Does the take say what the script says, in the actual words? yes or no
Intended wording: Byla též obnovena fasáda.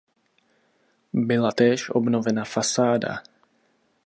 yes